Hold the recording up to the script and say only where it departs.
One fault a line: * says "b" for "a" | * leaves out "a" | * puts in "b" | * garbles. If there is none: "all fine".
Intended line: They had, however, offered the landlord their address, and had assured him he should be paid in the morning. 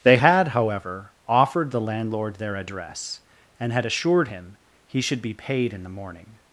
all fine